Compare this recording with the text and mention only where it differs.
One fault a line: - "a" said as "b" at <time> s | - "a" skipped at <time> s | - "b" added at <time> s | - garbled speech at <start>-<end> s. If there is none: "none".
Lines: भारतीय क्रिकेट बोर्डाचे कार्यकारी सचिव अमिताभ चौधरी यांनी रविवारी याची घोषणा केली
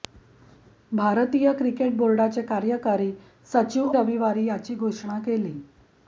- "अमिताभ चौधरी यांनी" skipped at 3.9 s